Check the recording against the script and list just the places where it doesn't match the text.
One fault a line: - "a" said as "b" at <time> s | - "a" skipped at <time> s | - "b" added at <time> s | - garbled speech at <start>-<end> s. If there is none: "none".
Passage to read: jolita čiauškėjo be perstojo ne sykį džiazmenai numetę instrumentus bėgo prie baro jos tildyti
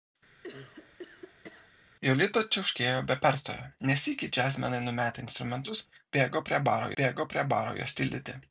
- "bėgo prie baro" added at 7.0 s